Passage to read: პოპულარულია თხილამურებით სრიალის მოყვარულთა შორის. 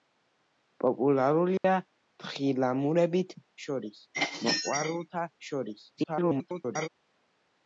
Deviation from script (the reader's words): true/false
true